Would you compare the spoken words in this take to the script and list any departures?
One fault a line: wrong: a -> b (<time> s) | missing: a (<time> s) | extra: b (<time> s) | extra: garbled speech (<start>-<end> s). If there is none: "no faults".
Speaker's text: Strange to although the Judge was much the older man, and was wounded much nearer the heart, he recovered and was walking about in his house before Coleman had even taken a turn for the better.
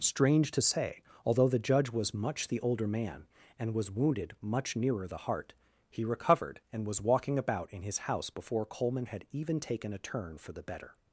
extra: say (0.6 s)